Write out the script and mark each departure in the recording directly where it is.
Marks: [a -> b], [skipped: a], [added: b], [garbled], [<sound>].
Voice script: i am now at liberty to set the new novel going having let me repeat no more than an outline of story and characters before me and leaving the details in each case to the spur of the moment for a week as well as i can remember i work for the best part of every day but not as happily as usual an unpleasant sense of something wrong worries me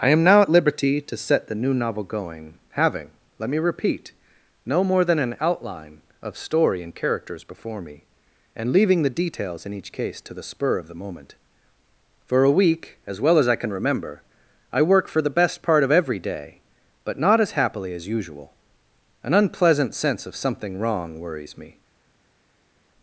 i am now at liberty to set the new novel going having let me repeat no more than an outline of story and characters before me and leaving the details in each case to the spur of the moment for a week as well as i can remember i work for the best part of every day but not as happily as usual an unpleasant sense of something wrong worries me